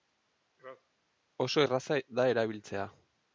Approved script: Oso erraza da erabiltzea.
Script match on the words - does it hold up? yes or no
yes